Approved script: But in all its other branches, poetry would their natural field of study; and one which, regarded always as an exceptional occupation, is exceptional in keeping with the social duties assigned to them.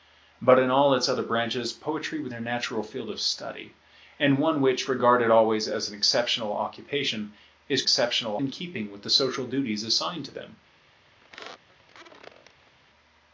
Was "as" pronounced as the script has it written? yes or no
yes